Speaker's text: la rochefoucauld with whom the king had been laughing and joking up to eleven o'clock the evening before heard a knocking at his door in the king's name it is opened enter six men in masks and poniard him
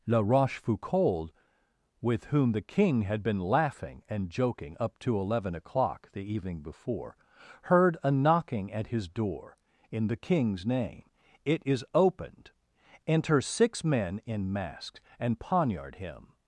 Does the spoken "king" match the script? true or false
true